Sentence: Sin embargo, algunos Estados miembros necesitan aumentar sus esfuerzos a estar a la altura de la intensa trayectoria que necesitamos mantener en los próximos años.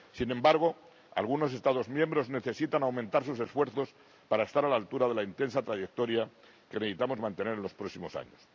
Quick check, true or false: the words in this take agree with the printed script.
false